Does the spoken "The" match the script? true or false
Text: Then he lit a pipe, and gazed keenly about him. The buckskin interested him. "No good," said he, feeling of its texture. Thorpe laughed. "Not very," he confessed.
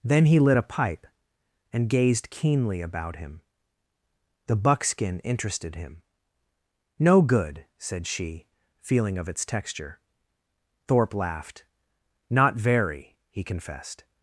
true